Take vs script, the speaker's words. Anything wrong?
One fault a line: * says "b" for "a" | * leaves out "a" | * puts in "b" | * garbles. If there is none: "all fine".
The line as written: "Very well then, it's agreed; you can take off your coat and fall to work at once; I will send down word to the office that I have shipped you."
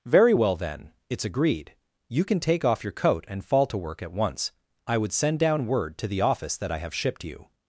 * says "would" for "will"